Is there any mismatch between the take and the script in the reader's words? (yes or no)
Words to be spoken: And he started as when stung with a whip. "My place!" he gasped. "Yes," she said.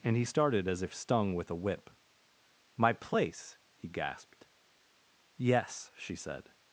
yes